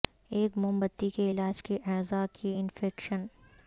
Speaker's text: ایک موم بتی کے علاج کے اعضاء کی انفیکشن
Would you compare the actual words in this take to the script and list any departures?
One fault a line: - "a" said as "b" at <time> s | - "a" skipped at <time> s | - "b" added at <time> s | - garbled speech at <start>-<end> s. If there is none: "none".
none